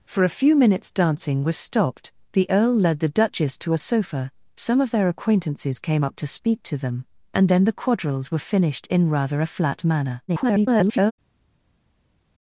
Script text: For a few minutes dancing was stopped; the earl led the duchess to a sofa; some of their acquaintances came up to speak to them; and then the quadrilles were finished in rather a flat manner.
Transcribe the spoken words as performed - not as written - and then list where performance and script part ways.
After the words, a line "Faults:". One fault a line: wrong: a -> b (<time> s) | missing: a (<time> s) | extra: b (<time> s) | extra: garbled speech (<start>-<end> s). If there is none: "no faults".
For a few minutes dancing was stopped; the earl led the duchess to a sofa; some of their acquaintances came up to speak to them; and then the quadrilles were finished in rather a flat manner. [garbled]
Faults:
extra: garbled speech (10.3-11.1 s)